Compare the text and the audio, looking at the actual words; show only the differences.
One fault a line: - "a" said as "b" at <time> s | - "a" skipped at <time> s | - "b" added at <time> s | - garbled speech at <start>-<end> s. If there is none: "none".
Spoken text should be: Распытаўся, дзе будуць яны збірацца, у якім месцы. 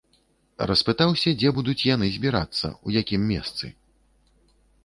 none